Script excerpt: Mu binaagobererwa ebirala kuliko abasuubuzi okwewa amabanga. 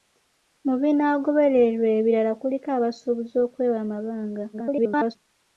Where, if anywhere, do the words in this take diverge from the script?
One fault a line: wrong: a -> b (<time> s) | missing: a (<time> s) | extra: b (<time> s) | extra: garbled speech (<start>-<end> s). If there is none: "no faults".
extra: garbled speech (4.5-5.2 s)